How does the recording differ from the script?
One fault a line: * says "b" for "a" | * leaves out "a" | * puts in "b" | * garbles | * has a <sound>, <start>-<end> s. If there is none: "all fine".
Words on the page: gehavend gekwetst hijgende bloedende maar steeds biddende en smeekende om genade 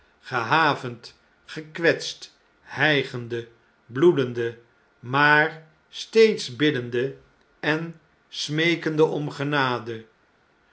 all fine